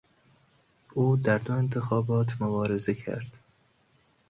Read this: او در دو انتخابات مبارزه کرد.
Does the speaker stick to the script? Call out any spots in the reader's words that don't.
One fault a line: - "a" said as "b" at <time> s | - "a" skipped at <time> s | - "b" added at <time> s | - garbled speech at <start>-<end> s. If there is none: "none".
none